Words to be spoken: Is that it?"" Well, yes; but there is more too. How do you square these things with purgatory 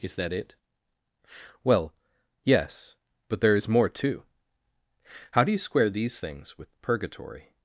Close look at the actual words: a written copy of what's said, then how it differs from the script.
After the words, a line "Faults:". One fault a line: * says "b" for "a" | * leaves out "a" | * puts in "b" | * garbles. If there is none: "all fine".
Is that it?"" Well, yes; but there is more too. How do you square these things with purgatory
Faults:
all fine